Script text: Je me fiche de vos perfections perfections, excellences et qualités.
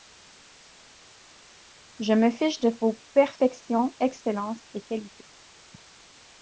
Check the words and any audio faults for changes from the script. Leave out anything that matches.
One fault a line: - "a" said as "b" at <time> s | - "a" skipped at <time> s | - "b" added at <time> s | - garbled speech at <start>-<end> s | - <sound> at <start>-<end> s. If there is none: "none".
- "perfections" skipped at 4.0 s